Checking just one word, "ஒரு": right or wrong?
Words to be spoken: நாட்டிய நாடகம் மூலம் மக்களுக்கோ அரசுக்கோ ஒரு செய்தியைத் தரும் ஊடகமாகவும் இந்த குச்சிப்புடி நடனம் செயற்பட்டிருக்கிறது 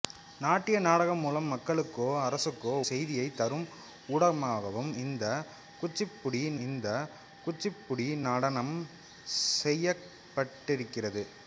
wrong